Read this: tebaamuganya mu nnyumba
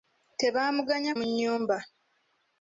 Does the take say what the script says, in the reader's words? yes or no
yes